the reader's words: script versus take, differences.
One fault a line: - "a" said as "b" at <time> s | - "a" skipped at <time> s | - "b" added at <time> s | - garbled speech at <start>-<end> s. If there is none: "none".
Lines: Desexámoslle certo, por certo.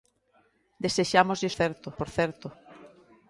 none